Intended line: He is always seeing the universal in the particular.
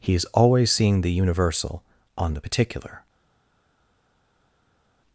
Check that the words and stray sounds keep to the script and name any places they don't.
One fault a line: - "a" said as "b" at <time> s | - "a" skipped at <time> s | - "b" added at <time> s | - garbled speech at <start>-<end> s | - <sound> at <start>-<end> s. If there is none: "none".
- "in" said as "on" at 2.2 s